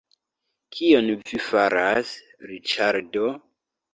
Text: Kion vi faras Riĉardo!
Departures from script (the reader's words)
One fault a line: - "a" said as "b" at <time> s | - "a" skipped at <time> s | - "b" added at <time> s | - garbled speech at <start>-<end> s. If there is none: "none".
none